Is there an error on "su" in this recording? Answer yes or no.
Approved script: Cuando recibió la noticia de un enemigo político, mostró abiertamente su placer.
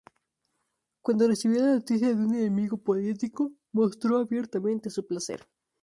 no